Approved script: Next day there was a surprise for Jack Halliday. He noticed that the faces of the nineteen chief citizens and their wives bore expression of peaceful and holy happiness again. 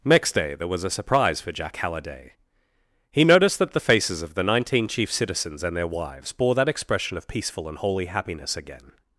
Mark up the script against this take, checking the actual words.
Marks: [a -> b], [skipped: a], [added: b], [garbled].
Next day there was a surprise for Jack Halliday. He noticed that the faces of the nineteen chief citizens and their wives bore [added: that] expression of peaceful and holy happiness again.